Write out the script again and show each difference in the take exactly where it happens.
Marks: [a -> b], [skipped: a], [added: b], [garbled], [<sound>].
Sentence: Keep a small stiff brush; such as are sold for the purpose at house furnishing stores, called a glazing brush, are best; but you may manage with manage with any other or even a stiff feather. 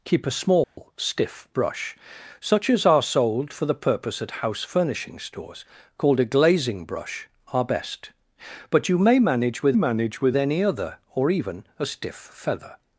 Keep a small [dropout] stiff brush; such as are sold for the purpose at house furnishing stores, called a glazing brush, are best; but you may manage with manage with any other or even a stiff feather.